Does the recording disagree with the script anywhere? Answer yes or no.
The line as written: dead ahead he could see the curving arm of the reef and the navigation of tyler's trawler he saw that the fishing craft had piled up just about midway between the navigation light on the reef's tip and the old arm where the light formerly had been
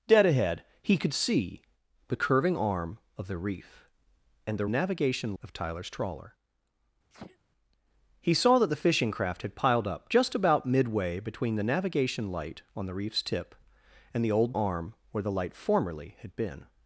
no